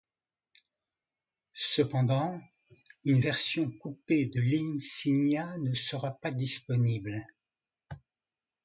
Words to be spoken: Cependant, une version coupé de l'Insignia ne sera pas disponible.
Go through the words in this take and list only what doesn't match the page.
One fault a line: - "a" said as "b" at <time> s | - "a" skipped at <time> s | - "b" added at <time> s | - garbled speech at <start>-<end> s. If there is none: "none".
none